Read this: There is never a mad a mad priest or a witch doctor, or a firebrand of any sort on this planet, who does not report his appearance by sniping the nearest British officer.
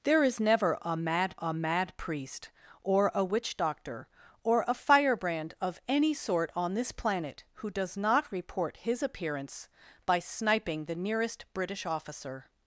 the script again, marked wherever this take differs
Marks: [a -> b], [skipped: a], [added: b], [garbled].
There is never a mad a mad priest or a witch doctor, or a firebrand of any sort on this planet, who does not report his appearance by sniping the nearest British officer.